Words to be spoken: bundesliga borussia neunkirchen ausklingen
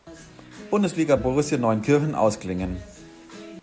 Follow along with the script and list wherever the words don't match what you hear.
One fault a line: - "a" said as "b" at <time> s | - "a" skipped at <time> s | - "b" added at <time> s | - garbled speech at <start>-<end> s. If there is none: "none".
none